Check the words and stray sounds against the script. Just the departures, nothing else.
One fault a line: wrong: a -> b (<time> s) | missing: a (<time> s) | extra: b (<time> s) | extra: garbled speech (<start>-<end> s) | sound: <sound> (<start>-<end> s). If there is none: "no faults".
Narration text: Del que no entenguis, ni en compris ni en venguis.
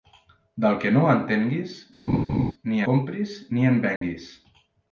sound: laugh (2.1-2.5 s)
missing: en (2.8 s)
sound: dropout (4.0-4.0 s)